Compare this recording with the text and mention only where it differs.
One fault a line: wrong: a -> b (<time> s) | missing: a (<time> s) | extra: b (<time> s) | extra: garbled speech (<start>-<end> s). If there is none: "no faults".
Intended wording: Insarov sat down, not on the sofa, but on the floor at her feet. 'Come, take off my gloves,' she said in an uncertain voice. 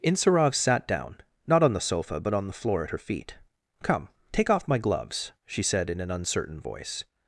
no faults